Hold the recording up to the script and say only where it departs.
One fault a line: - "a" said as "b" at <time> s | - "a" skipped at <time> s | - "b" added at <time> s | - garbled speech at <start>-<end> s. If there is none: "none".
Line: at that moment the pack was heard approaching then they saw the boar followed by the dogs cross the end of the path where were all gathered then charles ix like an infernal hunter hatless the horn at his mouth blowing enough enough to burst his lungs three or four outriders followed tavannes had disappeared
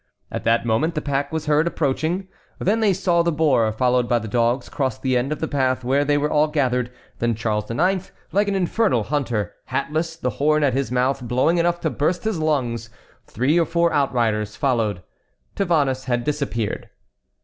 - "they" added at 6.0 s
- "enough" skipped at 11.8 s